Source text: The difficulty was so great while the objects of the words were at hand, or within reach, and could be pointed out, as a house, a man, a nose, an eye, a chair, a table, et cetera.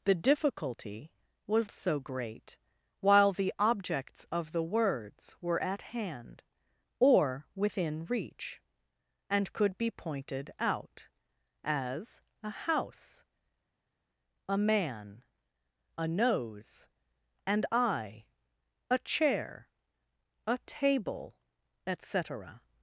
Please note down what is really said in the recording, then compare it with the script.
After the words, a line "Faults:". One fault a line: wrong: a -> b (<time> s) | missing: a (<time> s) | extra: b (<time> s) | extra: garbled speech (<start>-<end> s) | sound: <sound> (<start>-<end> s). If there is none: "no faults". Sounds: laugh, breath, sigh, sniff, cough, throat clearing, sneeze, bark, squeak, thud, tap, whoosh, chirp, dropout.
The difficulty was so great while the objects of the words were at hand, or within reach, and could be pointed out, as a house, a man, a nose, an eye, a chair, a table, et cetera.
Faults:
no faults